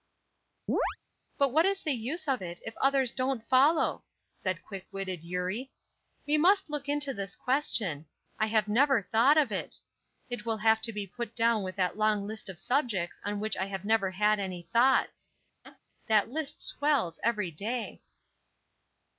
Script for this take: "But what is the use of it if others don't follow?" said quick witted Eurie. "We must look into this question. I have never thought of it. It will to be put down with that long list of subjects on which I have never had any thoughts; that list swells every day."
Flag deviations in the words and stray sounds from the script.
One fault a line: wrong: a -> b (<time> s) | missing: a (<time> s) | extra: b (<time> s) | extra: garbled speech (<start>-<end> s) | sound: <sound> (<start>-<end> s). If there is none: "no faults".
sound: chirp (0.7-1.0 s)
extra: have (10.6 s)
sound: laugh (15.6-15.8 s)